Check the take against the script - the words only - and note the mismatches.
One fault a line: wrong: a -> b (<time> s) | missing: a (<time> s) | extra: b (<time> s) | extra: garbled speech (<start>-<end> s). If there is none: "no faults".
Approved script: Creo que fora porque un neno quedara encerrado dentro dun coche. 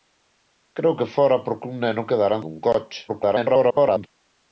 missing: encerrado dentro (2.4 s)
extra: garbled speech (3.1-4.1 s)